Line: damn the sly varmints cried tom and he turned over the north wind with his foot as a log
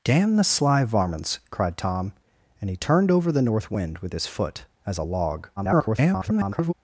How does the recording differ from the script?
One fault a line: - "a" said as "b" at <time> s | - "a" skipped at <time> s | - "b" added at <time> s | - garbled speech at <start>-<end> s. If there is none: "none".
- garbled speech at 5.6-6.7 s